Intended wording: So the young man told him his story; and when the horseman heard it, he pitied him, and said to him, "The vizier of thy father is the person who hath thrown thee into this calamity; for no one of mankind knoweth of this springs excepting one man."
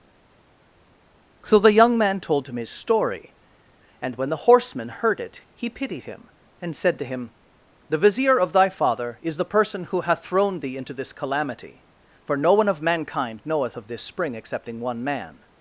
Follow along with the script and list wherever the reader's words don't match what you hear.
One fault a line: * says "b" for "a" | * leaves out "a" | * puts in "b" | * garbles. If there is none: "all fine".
* says "spring" for "springs"